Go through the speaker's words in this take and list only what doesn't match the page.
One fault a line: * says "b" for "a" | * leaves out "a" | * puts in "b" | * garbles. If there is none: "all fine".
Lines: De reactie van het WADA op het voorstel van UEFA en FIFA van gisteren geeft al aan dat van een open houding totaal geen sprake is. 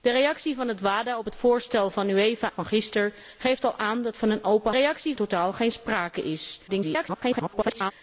* leaves out "en FIFA"
* says "reactie" for "houding"
* garbles